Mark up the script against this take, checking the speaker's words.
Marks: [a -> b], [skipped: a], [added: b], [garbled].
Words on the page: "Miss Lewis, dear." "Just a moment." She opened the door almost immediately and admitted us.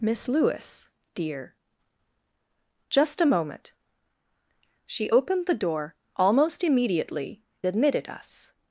"Miss Lewis, dear." "Just a moment." She opened the door almost immediately [skipped: and] admitted us.